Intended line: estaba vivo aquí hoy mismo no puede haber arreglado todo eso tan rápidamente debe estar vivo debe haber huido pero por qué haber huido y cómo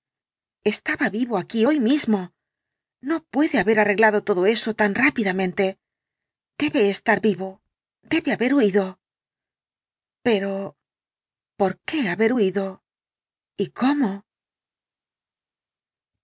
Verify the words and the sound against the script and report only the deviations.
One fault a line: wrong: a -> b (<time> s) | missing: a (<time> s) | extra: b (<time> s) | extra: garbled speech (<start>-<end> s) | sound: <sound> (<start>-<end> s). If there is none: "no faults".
no faults